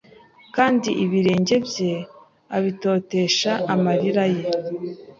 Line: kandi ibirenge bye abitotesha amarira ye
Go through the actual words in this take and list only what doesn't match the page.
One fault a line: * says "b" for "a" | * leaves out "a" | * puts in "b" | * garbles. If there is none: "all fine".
all fine